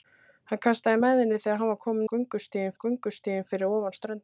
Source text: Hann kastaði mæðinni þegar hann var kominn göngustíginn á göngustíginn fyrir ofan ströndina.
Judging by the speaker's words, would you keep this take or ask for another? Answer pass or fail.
pass